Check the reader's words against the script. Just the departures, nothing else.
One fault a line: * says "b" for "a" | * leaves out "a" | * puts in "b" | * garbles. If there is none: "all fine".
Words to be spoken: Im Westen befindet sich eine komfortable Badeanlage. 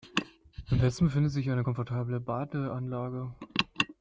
all fine